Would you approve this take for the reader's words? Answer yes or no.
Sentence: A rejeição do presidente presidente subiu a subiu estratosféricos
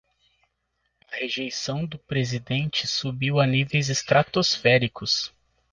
no